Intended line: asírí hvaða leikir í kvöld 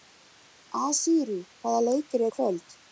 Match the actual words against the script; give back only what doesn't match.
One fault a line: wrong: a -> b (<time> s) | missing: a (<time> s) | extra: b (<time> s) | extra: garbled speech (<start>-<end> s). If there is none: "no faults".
no faults